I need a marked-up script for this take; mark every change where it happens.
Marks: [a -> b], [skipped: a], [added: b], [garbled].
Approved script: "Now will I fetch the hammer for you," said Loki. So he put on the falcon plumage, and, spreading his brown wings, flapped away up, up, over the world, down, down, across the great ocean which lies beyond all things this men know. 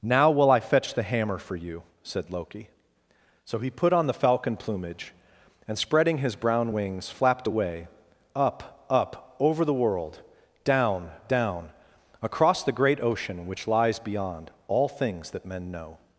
"Now will I fetch the hammer for you," said Loki. So he put on the falcon plumage, and, spreading his brown wings, flapped away up, up, over the world, down, down, across the great ocean which lies beyond all things [this -> that] men know.